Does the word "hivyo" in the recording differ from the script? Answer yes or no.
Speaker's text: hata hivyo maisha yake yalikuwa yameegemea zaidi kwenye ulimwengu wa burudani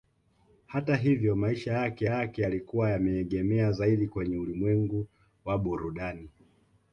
no